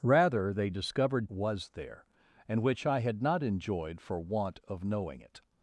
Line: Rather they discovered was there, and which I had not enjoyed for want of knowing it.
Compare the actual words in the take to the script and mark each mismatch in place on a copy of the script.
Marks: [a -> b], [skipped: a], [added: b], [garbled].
Rather they discovered was there, and which I had not enjoyed for want of knowing it.